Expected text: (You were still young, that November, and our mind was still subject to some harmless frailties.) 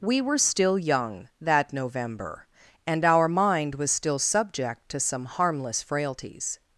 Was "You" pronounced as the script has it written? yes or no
no